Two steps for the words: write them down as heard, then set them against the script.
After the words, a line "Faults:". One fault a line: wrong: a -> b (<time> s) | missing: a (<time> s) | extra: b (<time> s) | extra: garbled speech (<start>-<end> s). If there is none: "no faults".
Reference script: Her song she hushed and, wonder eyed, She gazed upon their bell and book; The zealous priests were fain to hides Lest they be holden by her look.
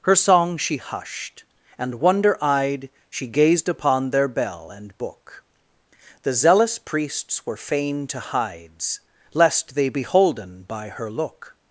Her song she hushed and, wonder eyed, She gazed upon their bell and book; The zealous priests were fain to hides Lest they be holden by her look.
Faults:
no faults